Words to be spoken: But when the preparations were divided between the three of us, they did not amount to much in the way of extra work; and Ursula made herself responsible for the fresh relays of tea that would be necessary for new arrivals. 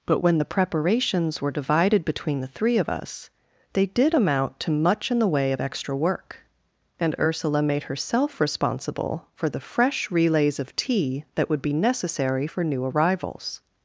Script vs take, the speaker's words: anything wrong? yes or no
yes